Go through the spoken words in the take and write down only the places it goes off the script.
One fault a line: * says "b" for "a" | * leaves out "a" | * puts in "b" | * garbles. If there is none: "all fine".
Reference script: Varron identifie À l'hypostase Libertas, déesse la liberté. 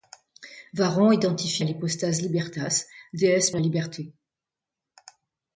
all fine